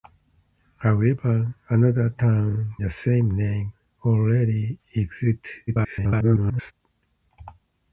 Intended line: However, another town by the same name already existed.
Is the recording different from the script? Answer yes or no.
yes